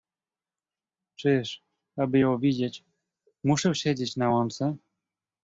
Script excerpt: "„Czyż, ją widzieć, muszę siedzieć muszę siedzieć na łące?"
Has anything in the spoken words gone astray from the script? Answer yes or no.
yes